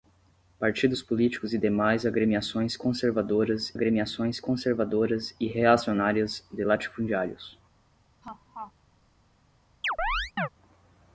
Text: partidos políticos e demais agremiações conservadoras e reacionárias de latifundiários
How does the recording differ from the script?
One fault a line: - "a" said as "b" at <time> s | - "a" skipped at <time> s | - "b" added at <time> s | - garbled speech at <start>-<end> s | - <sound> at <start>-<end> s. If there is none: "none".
- "agremiações conservadoras" added at 3.7 s
- laugh at 8.2-8.7 s
- chirp at 9.8-10.5 s